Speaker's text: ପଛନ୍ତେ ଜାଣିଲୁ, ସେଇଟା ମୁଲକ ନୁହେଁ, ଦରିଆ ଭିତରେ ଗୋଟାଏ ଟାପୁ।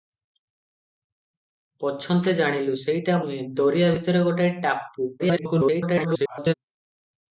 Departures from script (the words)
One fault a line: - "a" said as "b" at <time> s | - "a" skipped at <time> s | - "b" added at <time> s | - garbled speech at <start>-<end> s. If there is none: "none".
- "ମୁଲକ" skipped at 3.2 s
- garbled speech at 5.2-6.5 s